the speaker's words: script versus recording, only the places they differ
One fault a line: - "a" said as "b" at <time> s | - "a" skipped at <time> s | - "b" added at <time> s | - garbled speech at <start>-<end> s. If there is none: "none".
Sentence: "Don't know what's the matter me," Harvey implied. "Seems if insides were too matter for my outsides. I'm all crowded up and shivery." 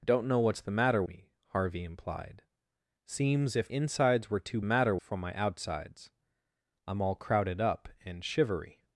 none